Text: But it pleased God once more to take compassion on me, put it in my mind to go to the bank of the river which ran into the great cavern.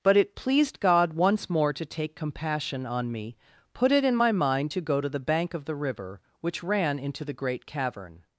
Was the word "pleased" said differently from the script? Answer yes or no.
no